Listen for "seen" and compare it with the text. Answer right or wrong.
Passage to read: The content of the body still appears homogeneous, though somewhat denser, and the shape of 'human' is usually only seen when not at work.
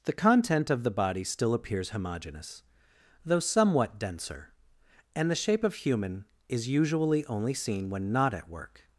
right